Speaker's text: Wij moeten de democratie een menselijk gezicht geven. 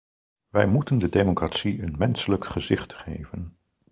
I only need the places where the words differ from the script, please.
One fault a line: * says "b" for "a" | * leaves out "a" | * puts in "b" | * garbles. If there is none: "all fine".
all fine